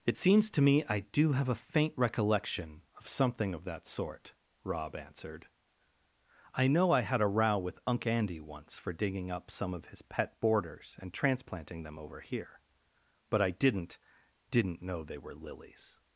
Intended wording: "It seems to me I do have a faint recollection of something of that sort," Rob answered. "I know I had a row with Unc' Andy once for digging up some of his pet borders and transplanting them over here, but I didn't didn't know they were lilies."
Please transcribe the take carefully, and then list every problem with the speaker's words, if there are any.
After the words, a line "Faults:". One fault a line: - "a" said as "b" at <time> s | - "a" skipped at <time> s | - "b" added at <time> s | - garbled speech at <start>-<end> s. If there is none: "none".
"It seems to me I do have a faint recollection of something of that sort," Rob answered. "I know I had a row with Unc' Andy once for digging up some of his pet borders and transplanting them over here, but I didn't didn't know they were lilies."
Faults:
none